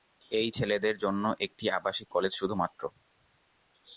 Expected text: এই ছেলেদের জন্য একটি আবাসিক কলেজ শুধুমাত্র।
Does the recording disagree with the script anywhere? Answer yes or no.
no